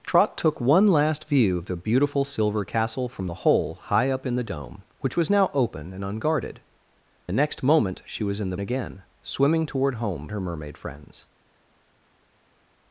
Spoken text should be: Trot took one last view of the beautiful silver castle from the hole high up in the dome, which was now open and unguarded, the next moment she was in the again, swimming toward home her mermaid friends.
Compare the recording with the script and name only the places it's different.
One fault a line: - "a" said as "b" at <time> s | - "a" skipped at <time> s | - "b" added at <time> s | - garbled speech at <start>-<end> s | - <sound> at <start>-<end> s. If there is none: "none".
none